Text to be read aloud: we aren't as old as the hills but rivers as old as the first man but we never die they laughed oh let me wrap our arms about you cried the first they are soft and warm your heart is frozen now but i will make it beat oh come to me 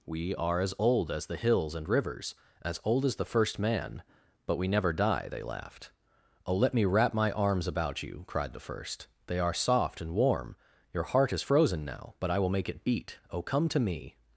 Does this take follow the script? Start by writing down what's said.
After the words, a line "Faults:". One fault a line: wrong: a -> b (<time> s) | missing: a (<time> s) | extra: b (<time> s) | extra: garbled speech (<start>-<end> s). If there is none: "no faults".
we are as old as the hills and rivers as old as the first man but we never die they laughed oh let me wrap my arms about you cried the first they are soft and warm your heart is frozen now but i will make it beat oh come to me
Faults:
wrong: aren't -> are (0.3 s)
wrong: but -> and (1.8 s)
wrong: our -> my (7.1 s)